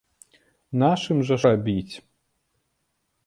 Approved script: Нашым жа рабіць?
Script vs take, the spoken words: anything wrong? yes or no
no